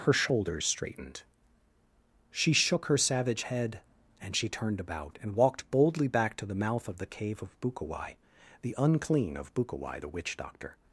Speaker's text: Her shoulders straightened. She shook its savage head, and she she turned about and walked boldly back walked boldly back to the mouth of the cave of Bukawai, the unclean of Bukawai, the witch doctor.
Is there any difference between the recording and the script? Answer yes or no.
yes